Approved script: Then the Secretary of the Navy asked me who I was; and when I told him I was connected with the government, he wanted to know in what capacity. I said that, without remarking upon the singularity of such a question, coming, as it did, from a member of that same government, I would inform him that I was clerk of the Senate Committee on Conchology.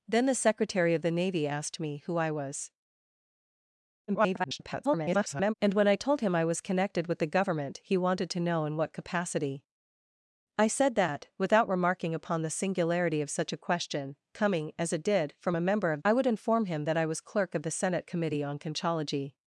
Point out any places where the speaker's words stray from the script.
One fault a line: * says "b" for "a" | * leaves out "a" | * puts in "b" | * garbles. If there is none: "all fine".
* garbles
* leaves out "that same government"